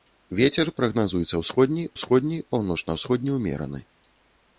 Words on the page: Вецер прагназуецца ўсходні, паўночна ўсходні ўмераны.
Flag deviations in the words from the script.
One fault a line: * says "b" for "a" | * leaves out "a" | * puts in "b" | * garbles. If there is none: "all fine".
* puts in "ўсходні"